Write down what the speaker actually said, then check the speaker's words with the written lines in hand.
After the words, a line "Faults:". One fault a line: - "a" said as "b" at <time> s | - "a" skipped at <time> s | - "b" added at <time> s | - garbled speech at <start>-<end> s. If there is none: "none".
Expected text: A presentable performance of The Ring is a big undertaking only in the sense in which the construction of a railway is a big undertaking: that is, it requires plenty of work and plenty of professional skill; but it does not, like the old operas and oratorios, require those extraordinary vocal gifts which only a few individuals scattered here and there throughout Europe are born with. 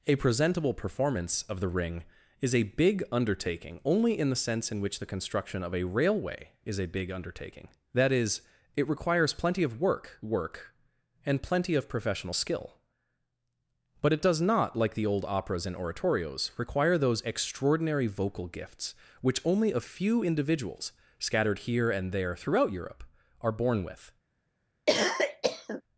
A presentable performance of The Ring is a big undertaking only in the sense in which the construction of a railway is a big undertaking: that is, it requires plenty of work work and plenty of professional skill; but it does not, like the old operas and oratorios, require those extraordinary vocal gifts which only a few individuals scattered here and there throughout Europe are born with.
Faults:
- "work" added at 10.2 s